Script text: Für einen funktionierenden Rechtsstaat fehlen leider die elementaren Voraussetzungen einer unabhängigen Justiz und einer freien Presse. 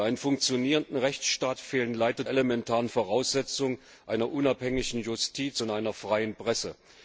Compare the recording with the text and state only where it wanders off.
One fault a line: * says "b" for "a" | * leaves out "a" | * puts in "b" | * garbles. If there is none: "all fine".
* leaves out "die"